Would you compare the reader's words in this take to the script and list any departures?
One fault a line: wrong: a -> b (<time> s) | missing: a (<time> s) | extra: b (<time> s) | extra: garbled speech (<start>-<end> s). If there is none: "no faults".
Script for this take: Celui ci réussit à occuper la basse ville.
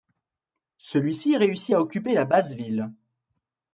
no faults